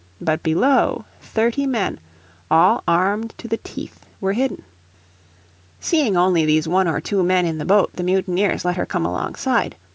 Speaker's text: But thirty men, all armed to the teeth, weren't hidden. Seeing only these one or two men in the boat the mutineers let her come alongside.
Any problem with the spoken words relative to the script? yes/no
yes